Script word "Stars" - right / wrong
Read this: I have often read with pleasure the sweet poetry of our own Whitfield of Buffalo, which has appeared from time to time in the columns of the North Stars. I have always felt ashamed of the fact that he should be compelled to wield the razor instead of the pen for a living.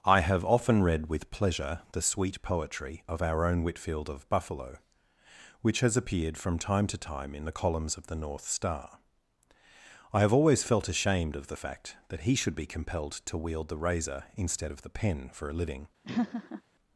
wrong